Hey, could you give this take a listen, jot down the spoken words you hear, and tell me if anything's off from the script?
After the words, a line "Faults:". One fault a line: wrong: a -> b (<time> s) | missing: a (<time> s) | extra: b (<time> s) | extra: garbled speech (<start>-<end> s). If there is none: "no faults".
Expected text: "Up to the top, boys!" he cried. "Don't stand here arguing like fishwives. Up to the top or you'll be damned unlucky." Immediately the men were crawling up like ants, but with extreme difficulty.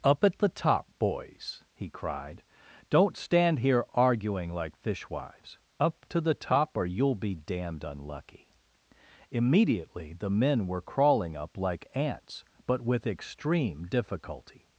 "Up at the top, boys!" he cried. "Don't stand here arguing like fishwives. Up to the top or you'll be damned unlucky." Immediately the men were crawling up like ants, but with extreme difficulty.
Faults:
wrong: to -> at (0.2 s)